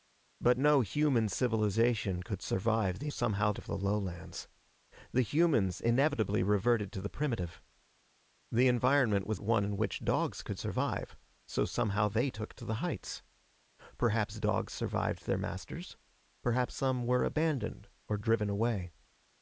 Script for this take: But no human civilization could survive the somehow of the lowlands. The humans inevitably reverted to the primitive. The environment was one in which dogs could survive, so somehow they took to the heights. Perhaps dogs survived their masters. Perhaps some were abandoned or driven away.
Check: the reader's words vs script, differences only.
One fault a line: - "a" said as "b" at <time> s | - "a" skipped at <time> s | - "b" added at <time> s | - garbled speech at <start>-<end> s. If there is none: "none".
none